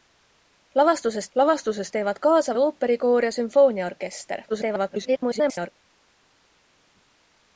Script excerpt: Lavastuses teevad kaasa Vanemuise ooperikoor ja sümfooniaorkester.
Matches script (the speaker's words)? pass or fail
fail